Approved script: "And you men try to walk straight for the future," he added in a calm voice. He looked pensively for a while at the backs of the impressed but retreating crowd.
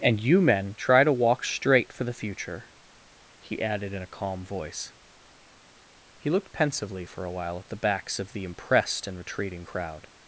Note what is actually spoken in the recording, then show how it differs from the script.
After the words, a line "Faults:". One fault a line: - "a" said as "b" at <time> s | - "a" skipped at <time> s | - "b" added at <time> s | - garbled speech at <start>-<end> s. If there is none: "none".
"And you men try to walk straight for the future," he added in a calm voice. He looked pensively for a while at the backs of the impressed and retreating crowd.
Faults:
- "but" said as "and" at 9.1 s